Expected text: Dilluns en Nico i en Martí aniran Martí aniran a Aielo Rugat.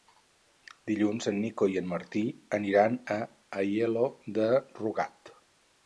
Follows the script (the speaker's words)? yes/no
no